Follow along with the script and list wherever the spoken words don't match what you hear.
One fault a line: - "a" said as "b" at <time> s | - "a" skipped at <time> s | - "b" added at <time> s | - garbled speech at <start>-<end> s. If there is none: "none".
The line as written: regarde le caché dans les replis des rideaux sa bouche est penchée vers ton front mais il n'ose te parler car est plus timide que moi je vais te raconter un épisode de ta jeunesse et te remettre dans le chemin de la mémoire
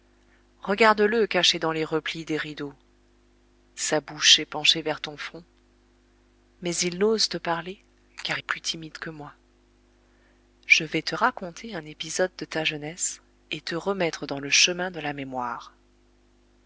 none